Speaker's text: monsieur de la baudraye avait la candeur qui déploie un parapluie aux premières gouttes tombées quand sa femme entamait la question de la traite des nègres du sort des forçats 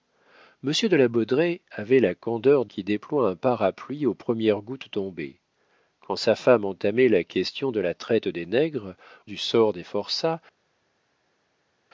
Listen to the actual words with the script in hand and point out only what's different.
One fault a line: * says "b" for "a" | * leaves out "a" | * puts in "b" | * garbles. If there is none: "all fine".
all fine